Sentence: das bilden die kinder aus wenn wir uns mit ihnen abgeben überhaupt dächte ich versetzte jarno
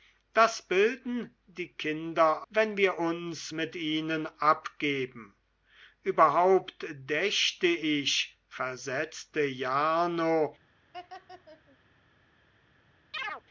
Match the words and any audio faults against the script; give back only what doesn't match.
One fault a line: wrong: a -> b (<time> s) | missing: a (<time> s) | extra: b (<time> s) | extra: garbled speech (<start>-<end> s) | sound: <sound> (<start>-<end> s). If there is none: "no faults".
missing: aus (2.5 s)
sound: laugh (10.9-11.8 s)
sound: chirp (13.1-13.4 s)